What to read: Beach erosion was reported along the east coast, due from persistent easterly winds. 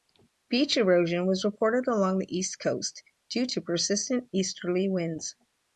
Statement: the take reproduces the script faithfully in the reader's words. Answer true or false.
false